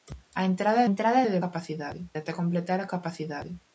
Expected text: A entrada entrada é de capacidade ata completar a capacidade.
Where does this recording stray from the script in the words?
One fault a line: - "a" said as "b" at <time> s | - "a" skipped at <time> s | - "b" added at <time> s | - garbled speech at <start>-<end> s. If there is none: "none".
none